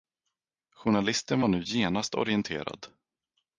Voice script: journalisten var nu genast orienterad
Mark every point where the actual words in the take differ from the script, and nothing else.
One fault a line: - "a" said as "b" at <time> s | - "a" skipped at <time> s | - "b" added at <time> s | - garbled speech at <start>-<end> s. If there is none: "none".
none